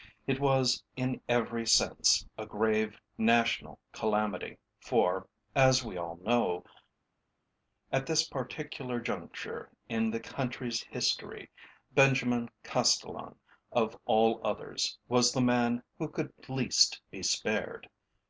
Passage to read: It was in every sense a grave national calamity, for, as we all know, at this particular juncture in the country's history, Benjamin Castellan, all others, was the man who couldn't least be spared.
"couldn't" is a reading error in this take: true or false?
true